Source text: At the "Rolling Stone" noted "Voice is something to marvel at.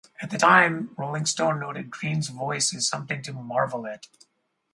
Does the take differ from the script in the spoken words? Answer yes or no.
yes